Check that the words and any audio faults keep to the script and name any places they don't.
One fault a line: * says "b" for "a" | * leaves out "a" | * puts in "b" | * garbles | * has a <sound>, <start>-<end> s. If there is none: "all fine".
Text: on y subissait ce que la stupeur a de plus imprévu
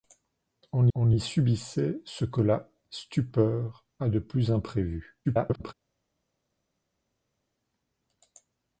* puts in "on"
* garbles